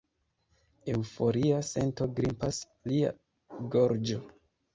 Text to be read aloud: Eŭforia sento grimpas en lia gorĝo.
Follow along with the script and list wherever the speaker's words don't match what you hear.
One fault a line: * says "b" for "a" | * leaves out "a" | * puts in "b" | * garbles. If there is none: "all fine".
* leaves out "en"